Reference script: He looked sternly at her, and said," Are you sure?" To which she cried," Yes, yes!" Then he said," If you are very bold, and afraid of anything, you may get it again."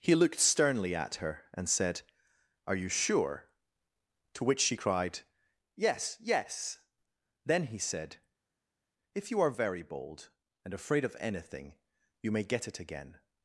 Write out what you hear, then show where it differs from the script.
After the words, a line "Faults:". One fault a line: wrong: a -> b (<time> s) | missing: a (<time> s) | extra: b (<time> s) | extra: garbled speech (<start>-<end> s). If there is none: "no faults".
He looked sternly at her, and said," Are you sure?" To which she cried," Yes, yes!" Then he said," If you are very bold, and afraid of anything, you may get it again."
Faults:
no faults